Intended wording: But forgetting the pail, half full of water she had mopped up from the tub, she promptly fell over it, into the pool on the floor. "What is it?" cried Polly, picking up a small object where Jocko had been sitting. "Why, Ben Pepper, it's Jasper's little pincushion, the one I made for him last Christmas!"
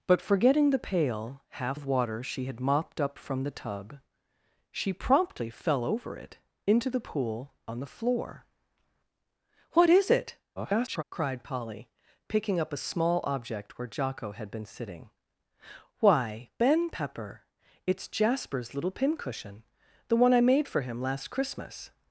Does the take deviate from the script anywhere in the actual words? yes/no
yes